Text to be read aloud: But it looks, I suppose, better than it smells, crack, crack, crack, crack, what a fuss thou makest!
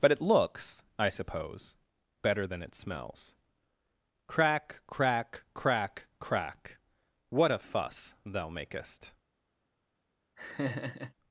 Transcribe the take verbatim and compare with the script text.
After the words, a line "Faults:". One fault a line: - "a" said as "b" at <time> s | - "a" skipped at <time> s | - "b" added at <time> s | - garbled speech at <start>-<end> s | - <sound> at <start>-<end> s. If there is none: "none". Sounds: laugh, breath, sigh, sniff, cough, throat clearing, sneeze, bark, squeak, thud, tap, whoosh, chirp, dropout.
But it looks, I suppose, better than it smells, crack, crack, crack, crack, what a fuss thou makest!
Faults:
- laugh at 10.4-11.1 s